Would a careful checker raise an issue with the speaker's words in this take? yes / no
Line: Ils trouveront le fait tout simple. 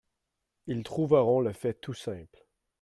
no